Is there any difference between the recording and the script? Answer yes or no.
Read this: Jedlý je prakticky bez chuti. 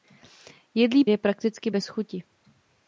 no